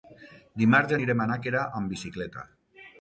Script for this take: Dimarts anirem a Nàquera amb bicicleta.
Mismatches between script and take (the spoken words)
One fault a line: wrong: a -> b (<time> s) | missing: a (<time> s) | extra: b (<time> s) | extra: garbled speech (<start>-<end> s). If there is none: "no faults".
no faults